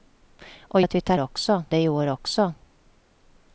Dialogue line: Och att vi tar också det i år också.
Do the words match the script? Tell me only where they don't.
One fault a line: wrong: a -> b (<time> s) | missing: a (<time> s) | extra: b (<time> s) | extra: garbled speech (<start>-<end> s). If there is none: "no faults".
no faults